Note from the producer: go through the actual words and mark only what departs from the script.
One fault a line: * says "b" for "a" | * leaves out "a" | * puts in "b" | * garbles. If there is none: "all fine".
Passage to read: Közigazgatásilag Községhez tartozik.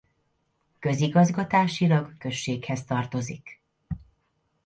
all fine